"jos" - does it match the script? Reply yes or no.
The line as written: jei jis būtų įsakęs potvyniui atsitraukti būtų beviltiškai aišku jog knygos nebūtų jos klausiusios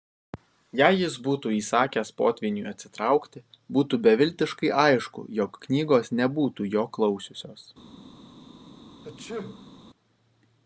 no